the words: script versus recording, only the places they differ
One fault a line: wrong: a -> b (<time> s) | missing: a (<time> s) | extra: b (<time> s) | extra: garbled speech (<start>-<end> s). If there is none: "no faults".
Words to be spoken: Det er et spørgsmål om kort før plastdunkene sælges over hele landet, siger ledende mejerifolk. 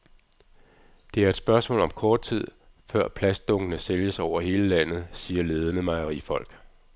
extra: tid (2.2 s)